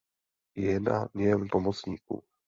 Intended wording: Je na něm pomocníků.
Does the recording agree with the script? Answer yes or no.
yes